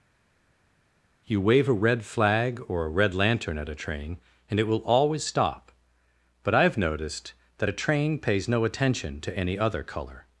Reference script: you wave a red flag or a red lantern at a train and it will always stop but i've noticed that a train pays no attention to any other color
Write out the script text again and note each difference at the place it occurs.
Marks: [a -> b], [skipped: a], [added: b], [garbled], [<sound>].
you wave a red flag or a red lantern at a train and it will always stop but i've noticed that a train pays no attention to any other color